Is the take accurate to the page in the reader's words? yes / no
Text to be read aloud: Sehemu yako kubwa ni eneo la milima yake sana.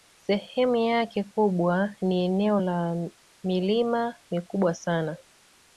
no